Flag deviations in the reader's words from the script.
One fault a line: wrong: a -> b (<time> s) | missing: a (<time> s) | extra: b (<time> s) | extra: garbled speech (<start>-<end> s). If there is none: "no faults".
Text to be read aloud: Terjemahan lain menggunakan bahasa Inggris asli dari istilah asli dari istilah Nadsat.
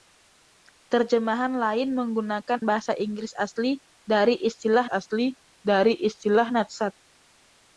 no faults